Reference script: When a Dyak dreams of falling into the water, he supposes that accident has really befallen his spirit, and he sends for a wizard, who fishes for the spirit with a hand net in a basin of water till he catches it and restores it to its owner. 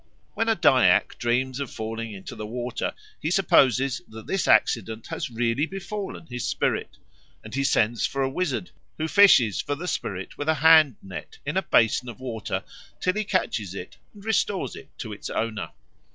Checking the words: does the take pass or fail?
fail